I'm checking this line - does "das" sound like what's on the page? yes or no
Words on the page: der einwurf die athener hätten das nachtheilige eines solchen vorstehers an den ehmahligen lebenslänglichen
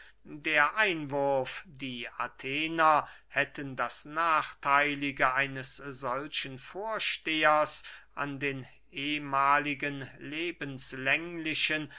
yes